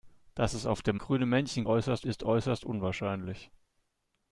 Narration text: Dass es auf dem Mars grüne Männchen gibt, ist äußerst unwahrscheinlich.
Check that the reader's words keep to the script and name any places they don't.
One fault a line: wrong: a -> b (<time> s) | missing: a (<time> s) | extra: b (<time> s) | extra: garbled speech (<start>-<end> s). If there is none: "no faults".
missing: Mars (1.0 s)
wrong: gibt -> äußerst (1.6 s)